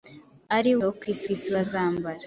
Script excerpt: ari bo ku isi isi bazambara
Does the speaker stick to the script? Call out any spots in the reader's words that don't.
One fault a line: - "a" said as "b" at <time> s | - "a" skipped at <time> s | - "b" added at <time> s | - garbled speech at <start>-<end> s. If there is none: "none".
none